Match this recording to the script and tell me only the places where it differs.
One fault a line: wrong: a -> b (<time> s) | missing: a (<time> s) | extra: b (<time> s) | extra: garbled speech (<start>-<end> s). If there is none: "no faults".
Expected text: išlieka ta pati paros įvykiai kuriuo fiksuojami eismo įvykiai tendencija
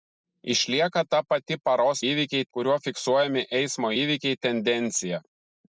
no faults